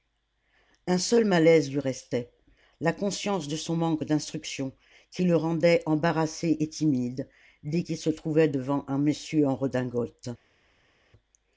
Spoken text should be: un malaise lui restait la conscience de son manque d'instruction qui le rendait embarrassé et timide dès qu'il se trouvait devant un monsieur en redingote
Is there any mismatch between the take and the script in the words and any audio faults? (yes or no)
yes